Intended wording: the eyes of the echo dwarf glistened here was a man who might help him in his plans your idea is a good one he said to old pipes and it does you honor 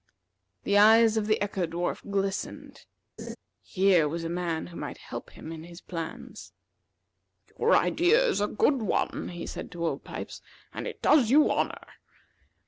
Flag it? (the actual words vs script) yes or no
no